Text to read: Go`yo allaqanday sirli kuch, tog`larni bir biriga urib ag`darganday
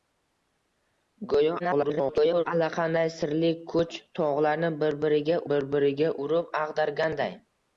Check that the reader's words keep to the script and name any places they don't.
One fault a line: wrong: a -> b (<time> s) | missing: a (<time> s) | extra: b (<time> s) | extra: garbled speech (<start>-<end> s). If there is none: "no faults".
extra: garbled speech (1.6-2.4 s)
extra: bir biriga (5.5 s)